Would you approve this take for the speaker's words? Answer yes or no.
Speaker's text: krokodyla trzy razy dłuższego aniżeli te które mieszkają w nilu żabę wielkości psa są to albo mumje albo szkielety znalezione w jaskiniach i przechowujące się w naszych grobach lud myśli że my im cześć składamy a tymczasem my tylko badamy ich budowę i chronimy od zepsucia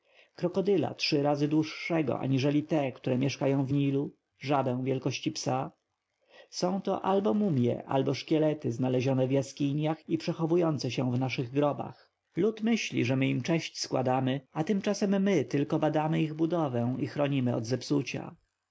yes